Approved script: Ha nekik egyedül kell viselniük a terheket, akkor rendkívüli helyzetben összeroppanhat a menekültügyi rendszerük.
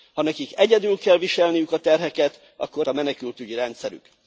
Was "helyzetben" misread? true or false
true